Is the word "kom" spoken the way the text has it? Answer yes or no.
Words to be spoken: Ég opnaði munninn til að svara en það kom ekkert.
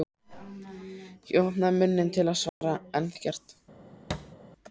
no